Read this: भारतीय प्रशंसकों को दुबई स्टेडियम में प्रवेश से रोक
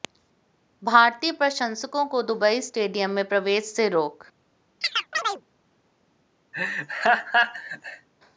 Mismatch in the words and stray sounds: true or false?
true